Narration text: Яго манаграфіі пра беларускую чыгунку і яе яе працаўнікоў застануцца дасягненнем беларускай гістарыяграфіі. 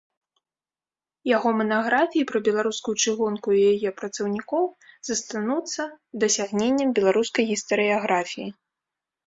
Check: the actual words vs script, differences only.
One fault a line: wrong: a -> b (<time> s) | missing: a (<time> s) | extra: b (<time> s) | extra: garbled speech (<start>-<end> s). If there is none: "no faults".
missing: яе (3.9 s)